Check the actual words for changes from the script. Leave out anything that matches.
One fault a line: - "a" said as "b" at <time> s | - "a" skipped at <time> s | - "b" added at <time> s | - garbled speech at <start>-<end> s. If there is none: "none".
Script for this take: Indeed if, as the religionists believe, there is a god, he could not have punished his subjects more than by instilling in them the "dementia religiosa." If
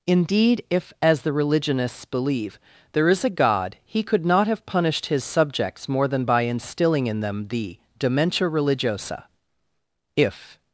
none